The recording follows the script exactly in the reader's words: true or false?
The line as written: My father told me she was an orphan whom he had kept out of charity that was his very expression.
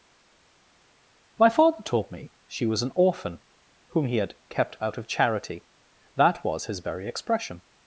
true